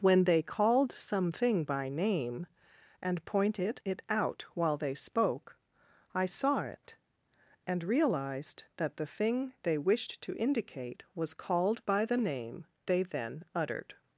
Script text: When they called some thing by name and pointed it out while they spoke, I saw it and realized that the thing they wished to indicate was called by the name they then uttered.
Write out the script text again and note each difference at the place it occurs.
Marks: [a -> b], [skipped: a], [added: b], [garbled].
When they called some thing by name and pointed it out while they spoke, I saw it and realized that the thing they wished to indicate was called by the name they then uttered.